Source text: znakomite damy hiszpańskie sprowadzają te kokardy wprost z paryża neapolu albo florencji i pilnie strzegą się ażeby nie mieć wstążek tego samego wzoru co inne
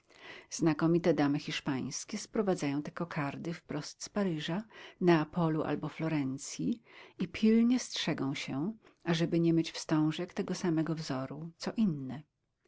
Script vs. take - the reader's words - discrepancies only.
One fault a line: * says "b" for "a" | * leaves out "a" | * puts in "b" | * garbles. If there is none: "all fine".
all fine